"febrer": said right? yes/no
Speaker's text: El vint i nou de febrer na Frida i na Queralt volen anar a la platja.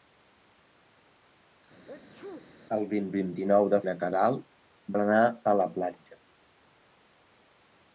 no